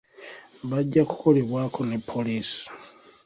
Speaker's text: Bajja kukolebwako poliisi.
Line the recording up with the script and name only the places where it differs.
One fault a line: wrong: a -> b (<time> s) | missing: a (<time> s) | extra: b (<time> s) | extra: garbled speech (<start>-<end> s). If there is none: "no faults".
extra: ne (1.9 s)